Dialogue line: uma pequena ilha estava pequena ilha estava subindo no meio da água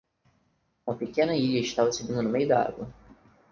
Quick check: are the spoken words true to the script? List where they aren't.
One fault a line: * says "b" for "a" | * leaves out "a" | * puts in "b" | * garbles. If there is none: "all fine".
* leaves out "pequena ilha estava"